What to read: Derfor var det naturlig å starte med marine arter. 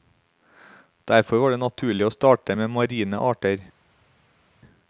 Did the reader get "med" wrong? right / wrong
right